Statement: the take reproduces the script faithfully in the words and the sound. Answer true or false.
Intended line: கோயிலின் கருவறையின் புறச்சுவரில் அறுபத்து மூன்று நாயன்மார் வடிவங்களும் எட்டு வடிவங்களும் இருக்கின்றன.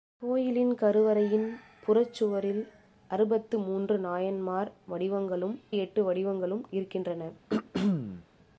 false